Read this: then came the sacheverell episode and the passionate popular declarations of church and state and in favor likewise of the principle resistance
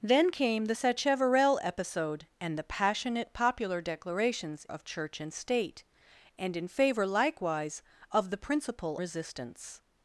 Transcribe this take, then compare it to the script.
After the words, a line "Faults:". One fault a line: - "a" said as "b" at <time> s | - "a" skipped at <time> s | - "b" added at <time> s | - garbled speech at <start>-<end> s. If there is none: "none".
then came the sacheverell episode and the passionate popular declarations of church and state and in favor likewise of the principle resistance
Faults:
none